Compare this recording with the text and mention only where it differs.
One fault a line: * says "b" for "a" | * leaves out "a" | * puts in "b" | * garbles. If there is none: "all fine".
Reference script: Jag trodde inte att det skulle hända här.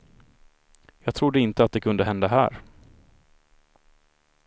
* says "kunde" for "skulle"